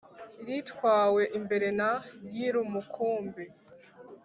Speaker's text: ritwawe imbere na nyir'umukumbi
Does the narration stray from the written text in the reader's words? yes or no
no